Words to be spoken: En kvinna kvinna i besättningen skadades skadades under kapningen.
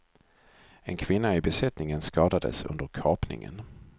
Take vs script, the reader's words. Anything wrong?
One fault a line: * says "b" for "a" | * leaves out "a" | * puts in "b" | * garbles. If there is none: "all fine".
* leaves out "kvinna"
* leaves out "skadades"